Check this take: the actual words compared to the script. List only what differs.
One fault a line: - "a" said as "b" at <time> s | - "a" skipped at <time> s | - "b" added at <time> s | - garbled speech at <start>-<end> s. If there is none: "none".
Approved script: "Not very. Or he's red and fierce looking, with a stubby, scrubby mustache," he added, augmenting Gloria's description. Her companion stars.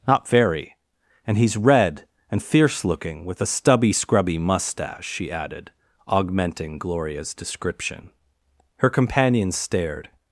- "Or" said as "And" at 1.2 s
- "he" said as "she" at 5.1 s
- "stars" said as "stared" at 9.5 s